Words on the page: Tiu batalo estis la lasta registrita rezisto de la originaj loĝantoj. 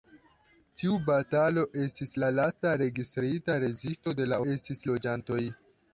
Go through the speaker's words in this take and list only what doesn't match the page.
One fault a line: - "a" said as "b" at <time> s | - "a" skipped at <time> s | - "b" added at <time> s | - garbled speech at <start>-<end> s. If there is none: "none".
- "originaj" said as "estis" at 4.5 s